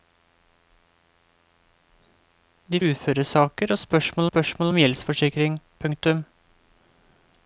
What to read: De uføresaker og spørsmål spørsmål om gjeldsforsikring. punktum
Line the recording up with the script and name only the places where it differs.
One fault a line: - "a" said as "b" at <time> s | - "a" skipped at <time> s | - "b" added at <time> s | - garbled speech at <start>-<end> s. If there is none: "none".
none